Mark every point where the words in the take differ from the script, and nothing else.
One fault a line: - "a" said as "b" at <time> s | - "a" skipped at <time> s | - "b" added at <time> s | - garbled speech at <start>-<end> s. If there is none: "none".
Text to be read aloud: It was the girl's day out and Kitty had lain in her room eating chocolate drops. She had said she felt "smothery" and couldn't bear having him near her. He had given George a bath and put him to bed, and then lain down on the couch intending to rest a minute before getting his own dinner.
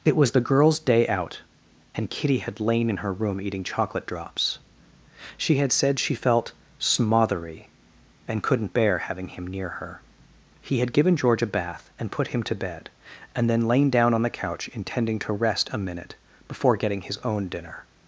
none